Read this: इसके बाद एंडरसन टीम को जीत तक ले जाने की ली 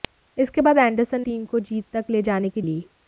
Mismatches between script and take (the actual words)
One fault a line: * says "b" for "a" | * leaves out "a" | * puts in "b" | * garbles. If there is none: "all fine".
all fine